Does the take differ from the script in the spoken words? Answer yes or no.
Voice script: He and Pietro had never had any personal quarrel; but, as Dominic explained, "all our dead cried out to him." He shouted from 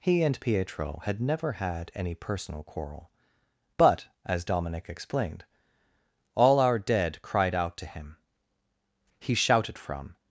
no